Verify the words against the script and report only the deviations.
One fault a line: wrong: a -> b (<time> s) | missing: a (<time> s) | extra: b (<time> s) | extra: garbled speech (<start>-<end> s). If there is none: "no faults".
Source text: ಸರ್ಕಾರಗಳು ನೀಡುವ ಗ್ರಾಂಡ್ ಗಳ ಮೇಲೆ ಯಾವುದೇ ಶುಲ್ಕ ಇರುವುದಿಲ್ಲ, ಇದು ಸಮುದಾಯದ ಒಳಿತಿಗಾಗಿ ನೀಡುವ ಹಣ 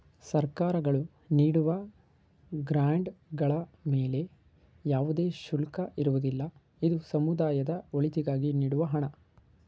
no faults